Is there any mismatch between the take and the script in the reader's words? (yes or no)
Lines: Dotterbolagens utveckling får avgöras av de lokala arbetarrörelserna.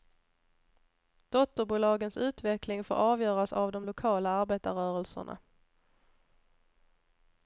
no